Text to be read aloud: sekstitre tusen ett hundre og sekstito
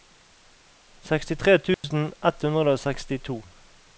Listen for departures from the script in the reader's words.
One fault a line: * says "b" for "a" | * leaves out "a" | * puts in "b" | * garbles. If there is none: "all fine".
all fine